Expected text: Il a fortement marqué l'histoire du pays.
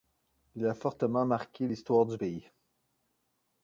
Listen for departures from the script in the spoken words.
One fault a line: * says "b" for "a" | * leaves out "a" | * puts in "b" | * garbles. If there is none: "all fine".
all fine